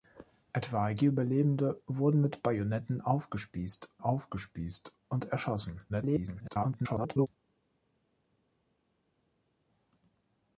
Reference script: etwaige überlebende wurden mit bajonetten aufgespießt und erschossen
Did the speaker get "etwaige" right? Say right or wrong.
right